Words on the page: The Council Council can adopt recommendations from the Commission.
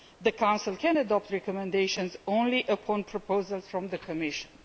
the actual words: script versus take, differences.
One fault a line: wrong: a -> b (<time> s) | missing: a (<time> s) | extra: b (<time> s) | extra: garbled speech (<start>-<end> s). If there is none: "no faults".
missing: Council (0.8 s)
extra: only upon proposals (2.3 s)